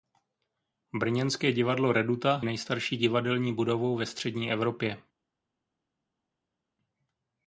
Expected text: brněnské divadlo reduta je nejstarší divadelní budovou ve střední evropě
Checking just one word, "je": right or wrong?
wrong